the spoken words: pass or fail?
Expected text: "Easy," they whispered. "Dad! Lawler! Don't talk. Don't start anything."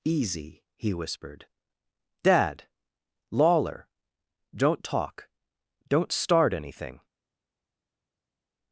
fail